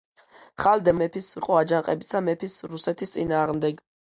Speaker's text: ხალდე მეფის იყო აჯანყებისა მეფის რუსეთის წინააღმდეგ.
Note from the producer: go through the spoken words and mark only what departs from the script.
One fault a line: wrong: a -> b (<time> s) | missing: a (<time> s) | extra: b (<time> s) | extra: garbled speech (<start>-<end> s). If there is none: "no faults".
no faults